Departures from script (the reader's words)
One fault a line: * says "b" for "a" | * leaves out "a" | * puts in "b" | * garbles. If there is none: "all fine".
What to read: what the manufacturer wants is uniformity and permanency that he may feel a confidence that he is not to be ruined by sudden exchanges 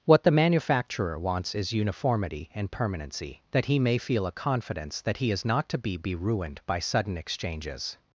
* puts in "be"